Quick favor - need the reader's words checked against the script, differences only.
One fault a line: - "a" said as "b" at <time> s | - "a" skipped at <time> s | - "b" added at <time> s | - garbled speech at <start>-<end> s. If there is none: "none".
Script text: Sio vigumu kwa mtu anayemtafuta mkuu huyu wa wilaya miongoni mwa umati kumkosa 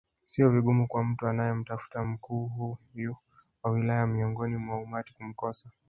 none